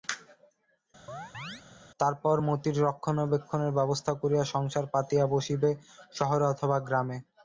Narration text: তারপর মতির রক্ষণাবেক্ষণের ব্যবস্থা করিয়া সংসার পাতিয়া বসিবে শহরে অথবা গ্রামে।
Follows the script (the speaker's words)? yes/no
yes